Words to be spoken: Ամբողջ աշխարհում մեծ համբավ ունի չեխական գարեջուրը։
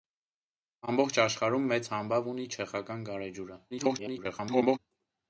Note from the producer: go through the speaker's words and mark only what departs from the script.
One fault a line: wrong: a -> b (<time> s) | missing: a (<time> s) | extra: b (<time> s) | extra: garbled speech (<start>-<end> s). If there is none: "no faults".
extra: garbled speech (3.7-4.8 s)